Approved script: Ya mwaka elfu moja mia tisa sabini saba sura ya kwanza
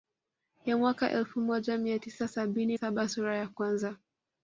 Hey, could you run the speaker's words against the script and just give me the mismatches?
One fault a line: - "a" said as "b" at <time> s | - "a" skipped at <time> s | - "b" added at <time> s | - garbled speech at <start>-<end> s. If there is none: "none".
none